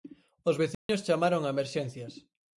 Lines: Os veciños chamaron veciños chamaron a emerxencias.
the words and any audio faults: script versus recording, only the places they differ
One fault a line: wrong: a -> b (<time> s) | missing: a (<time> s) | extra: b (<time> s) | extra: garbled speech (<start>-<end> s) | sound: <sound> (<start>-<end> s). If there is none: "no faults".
sound: dropout (0.7-0.9 s)
missing: veciños chamaron (1.4 s)